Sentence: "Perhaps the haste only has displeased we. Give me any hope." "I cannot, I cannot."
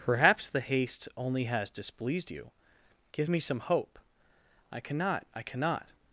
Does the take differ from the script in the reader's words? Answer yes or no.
yes